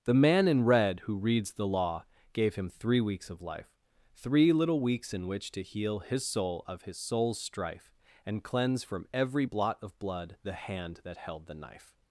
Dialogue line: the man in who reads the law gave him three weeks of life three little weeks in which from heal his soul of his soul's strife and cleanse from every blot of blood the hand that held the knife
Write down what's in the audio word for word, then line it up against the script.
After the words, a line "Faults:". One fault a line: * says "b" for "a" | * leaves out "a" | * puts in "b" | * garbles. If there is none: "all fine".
the man in red who reads the law gave him three weeks of life three little weeks in which to heal his soul of his soul's strife and cleanse from every blot of blood the hand that held the knife
Faults:
* puts in "red"
* says "to" for "from"